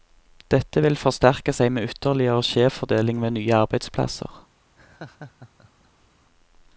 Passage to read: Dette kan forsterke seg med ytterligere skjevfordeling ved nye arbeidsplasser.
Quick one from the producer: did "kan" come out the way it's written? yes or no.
no